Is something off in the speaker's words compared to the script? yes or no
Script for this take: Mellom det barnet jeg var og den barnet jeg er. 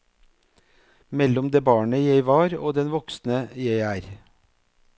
yes